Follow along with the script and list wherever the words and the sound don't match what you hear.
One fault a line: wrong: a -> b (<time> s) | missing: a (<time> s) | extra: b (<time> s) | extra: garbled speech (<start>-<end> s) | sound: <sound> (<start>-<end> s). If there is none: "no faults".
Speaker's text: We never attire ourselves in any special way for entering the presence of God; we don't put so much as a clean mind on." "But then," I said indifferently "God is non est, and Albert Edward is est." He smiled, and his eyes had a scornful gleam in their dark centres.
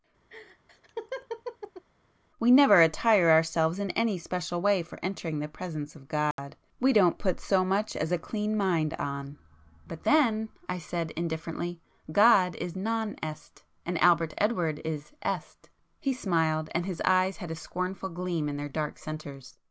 sound: laugh (0.3-1.8 s)
sound: dropout (6.3-6.4 s)